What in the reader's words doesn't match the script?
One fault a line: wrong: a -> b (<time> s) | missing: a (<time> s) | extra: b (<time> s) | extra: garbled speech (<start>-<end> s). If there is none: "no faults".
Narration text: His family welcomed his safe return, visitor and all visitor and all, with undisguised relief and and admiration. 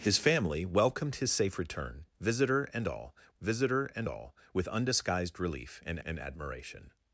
no faults